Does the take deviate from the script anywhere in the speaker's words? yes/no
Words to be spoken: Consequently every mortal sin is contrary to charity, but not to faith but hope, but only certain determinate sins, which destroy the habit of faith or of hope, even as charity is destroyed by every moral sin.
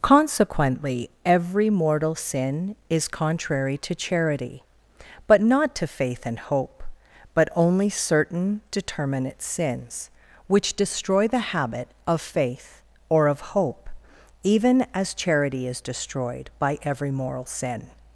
yes